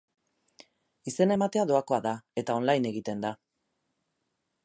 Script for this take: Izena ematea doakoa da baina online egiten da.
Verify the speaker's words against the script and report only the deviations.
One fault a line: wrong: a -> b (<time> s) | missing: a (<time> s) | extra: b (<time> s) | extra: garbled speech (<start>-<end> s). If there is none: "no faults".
wrong: baina -> eta (2.4 s)